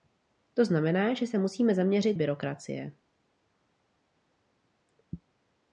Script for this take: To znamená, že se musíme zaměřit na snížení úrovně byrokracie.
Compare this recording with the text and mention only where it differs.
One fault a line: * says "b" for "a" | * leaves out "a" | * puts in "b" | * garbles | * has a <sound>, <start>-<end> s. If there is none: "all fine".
* leaves out "na snížení úrovně"